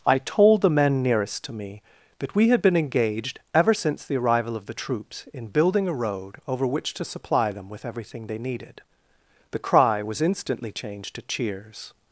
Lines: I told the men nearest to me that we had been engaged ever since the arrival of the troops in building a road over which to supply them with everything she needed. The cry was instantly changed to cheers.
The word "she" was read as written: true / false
false